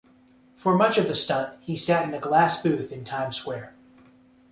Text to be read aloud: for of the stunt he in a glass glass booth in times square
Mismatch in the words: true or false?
true